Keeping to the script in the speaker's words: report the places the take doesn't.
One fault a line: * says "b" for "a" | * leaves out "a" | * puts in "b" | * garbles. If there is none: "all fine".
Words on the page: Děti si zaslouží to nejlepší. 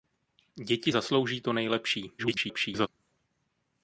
* leaves out "si"
* garbles